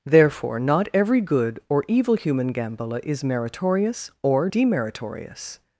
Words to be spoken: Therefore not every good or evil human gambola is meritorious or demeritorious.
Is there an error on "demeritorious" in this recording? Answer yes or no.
no